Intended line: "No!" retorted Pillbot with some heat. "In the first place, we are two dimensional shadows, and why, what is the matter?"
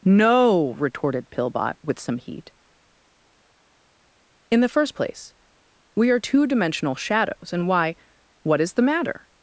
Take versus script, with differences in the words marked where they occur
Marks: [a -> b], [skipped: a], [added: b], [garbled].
"No!" retorted Pillbot with some heat. "In the first place, we are two dimensional shadows, and why, what is the matter?"